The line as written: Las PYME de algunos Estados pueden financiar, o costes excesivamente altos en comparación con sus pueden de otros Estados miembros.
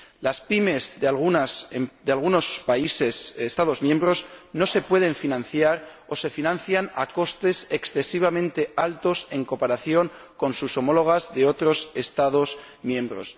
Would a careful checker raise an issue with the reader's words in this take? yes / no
yes